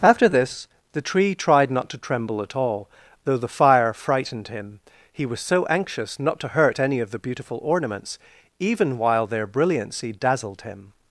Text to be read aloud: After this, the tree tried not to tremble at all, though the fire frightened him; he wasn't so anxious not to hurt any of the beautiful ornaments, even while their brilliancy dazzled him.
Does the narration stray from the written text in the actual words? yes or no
yes